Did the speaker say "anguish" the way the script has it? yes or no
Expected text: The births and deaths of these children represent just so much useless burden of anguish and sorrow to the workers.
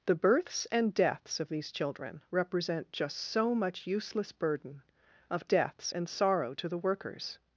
no